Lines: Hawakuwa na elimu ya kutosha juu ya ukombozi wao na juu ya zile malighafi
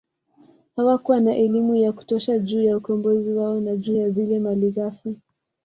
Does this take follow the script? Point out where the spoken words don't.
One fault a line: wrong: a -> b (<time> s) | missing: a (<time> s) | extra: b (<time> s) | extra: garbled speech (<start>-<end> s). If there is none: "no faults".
no faults